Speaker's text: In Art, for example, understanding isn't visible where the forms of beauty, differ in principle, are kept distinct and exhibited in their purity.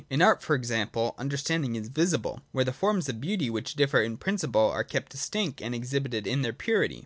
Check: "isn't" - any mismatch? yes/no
yes